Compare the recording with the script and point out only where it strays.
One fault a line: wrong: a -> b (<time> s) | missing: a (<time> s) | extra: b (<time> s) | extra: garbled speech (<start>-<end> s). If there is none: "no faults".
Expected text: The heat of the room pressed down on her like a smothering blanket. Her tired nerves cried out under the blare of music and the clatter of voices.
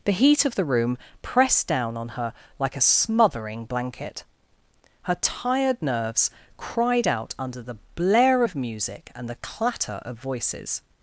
no faults